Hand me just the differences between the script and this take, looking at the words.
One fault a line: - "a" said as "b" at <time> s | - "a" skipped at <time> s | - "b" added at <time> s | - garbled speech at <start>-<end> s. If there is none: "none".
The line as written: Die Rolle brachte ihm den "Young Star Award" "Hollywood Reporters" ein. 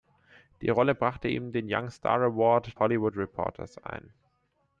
none